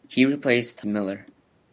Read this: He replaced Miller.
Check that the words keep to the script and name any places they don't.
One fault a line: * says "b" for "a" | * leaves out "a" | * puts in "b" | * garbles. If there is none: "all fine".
all fine